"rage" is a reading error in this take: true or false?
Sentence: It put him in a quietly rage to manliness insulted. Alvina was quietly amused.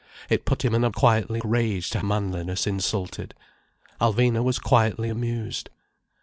false